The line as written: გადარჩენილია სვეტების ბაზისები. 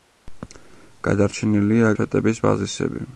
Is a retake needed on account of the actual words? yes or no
no